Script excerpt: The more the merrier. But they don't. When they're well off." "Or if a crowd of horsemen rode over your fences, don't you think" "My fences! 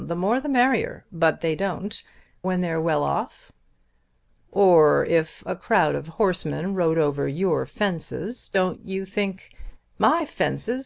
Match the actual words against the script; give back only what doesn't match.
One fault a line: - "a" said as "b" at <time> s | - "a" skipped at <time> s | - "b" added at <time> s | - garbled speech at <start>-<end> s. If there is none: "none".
none